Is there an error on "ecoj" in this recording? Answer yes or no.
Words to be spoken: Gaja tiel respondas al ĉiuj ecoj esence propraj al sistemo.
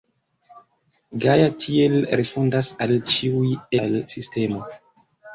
yes